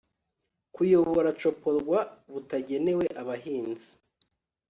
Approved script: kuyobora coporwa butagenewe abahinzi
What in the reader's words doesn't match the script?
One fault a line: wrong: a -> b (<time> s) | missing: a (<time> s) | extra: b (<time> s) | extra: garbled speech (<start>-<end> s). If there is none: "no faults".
no faults